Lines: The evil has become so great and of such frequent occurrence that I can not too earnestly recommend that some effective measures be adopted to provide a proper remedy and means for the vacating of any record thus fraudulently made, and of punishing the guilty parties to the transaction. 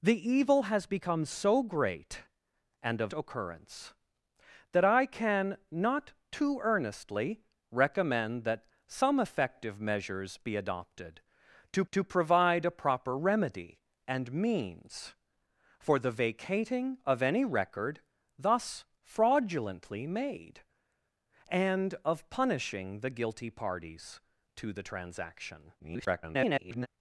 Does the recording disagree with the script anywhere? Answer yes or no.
yes